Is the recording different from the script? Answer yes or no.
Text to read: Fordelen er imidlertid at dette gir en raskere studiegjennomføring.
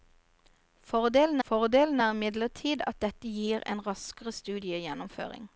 yes